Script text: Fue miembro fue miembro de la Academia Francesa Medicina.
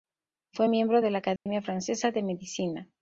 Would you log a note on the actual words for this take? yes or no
yes